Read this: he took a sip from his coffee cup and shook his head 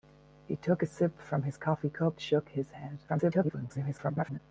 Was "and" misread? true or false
true